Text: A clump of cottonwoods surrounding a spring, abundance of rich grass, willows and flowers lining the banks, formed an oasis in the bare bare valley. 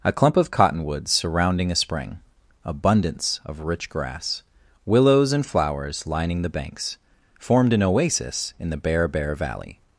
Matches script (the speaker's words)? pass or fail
pass